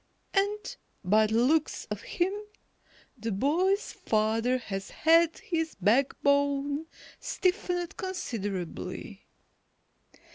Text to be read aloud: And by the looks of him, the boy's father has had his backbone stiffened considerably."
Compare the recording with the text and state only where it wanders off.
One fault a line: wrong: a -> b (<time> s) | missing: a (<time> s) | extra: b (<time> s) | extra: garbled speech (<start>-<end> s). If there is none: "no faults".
no faults